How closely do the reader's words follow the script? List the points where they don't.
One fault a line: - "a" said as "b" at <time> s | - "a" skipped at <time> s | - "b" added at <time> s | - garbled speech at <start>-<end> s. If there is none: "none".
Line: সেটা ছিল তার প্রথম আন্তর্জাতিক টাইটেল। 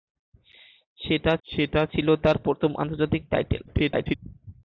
- "সেটা" added at 1.5 s
- garbled speech at 3.7-4.2 s